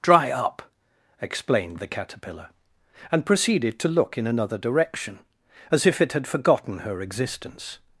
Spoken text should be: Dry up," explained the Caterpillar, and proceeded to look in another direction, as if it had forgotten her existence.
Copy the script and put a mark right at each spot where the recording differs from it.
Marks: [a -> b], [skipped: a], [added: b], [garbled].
Dry up," explained the Caterpillar, and proceeded to look in another direction, as if it had forgotten her existence.